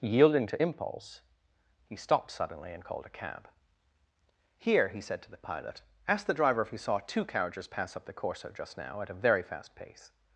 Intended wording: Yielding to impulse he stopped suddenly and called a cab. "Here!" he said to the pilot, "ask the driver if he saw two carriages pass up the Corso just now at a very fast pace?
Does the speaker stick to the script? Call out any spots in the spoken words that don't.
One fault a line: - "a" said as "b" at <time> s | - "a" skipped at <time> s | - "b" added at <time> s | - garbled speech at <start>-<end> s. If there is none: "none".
none